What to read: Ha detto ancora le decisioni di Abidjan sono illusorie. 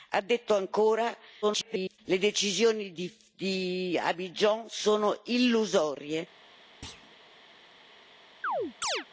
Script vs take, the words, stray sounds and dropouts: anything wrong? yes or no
yes